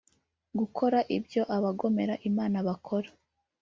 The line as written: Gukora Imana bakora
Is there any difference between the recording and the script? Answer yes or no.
yes